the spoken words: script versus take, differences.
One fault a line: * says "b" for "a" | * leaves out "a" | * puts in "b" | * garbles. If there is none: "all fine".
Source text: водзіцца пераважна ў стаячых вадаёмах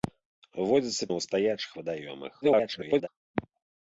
* leaves out "пераважна"
* garbles